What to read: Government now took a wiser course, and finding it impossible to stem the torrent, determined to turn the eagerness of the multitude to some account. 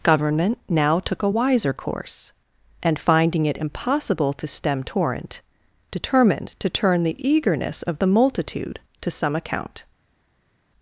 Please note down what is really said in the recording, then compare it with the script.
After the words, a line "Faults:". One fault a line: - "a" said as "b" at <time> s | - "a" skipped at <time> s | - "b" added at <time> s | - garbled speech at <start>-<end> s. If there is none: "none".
Government now took a wiser course, and finding it impossible to stem torrent, determined to turn the eagerness of the multitude to some account.
Faults:
- "the" skipped at 4.8 s